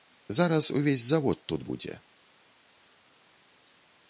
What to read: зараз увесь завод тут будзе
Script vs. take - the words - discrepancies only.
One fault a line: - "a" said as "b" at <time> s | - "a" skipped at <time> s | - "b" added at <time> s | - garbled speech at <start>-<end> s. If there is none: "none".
none